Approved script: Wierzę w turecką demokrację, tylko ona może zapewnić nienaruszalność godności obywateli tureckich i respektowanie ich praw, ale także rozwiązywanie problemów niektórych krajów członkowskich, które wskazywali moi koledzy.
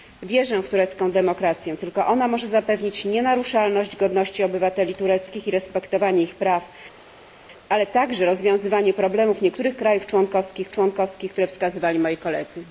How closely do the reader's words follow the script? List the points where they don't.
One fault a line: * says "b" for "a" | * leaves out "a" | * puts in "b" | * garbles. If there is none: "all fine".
* puts in "członkowskich"